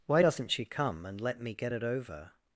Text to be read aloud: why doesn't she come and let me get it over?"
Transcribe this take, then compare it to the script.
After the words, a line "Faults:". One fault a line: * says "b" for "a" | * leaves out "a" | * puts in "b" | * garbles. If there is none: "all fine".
why doesn't she come and let me get it over?"
Faults:
all fine